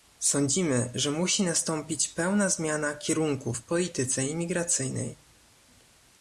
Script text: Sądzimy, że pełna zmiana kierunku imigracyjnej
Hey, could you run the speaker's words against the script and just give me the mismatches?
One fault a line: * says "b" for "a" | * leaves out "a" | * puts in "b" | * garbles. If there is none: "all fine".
* puts in "musi nastąpić"
* puts in "w polityce"